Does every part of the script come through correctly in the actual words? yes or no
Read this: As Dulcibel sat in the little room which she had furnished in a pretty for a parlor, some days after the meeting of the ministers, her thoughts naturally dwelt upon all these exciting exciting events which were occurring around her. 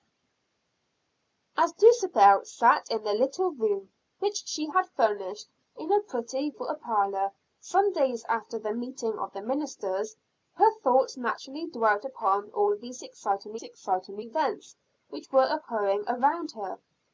yes